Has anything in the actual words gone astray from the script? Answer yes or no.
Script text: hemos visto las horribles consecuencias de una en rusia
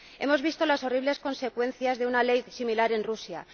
yes